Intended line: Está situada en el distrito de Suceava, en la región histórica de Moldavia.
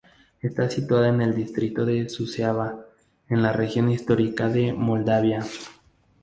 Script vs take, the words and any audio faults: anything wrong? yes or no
no